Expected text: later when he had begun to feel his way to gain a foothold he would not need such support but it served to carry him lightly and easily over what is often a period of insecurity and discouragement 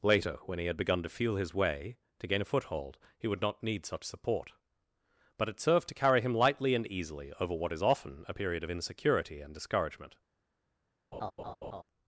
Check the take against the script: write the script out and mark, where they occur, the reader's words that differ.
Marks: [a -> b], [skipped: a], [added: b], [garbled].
later when he had begun to feel his way to gain a foothold he would not need such support but it served to carry him lightly and easily over what is often a period of insecurity and discouragement